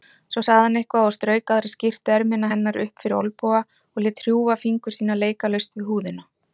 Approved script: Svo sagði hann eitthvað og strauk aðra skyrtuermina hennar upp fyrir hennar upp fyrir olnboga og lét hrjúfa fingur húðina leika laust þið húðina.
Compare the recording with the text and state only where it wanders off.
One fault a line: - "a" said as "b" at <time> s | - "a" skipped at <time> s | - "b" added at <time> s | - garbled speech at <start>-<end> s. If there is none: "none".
- "hennar upp fyrir" skipped at 3.2 s
- "húðina" said as "sína" at 5.0 s
- "þið" said as "við" at 5.8 s